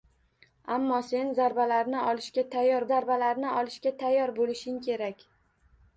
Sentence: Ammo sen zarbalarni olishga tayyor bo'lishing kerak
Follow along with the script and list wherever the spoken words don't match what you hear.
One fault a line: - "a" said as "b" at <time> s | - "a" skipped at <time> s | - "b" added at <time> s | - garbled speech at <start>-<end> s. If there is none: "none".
- "zarbalarni olishga tayyor" added at 2.9 s